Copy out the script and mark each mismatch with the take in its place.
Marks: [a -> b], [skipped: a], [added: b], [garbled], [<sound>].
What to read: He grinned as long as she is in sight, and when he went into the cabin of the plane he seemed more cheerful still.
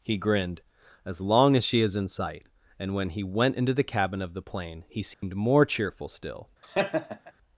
He grinned as long as she is in sight, and when he went into the cabin of the plane he seemed [dropout] more cheerful still. [laugh]